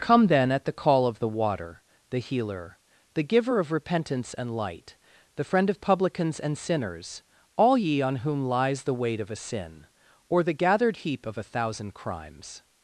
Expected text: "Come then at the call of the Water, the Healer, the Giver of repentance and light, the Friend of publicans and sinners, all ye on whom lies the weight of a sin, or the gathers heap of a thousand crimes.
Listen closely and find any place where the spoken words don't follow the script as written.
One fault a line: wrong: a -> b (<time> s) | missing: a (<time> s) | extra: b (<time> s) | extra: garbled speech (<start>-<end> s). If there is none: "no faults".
wrong: gathers -> gathered (10.5 s)